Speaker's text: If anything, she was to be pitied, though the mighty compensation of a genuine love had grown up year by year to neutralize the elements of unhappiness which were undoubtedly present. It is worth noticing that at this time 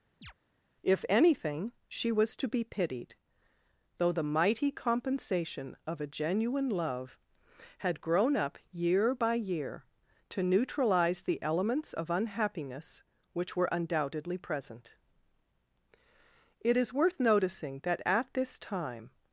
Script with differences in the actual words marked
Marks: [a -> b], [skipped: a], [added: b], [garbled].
If anything, she was to be pitied, though the mighty compensation of a genuine love had grown up year by year to neutralize the elements of unhappiness which were undoubtedly present. It is worth noticing that at this time